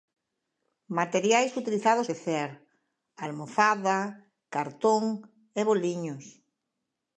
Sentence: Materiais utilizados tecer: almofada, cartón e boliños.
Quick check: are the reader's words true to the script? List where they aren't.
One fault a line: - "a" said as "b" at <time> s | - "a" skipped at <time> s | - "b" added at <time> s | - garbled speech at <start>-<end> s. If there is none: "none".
none